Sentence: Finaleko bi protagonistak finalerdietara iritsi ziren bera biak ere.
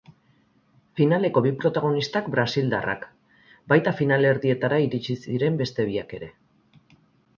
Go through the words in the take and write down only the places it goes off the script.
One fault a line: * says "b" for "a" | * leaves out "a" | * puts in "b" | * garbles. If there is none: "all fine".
* puts in "brasildarrak baita"
* says "beste" for "bera"